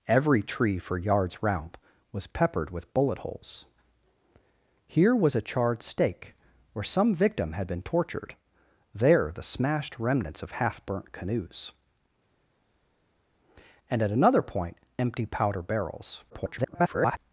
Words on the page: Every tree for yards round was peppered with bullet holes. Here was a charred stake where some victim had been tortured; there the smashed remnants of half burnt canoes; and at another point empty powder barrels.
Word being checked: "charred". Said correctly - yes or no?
yes